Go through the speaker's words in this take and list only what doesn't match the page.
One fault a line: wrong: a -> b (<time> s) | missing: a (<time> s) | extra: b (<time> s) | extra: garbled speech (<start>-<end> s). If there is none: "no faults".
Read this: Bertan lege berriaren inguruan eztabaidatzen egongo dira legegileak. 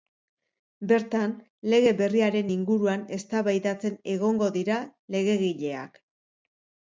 no faults